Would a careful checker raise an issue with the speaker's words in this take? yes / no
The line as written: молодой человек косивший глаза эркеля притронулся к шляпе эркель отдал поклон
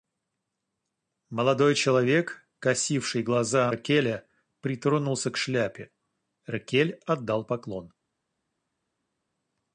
no